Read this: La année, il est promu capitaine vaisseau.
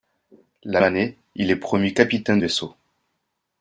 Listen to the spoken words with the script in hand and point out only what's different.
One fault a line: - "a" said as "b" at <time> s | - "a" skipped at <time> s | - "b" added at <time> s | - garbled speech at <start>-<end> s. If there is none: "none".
none